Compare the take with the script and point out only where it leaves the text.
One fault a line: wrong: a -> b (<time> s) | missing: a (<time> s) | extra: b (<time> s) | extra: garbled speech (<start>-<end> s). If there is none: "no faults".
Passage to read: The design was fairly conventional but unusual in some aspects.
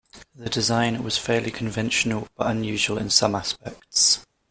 no faults